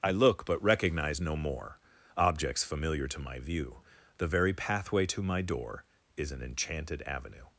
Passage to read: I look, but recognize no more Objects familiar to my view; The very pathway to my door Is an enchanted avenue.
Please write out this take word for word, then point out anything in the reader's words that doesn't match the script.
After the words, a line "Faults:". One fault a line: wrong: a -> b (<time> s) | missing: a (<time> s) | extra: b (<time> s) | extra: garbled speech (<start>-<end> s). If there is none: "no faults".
I look, but recognize no more Objects familiar to my view; The very pathway to my door Is an enchanted avenue.
Faults:
no faults